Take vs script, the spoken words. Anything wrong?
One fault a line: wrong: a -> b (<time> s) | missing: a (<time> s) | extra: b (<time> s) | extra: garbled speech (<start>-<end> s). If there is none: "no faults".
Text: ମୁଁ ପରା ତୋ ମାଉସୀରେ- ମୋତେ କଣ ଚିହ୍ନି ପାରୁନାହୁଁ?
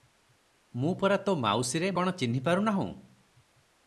missing: ମୋତେ (1.9 s)